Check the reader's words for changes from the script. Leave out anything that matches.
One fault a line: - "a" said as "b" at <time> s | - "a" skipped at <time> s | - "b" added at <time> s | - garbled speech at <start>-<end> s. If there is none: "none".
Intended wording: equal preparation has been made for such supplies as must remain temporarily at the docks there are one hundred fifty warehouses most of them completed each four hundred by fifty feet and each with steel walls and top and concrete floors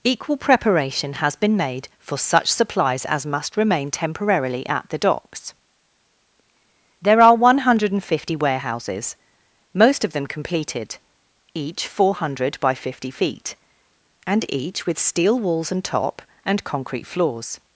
none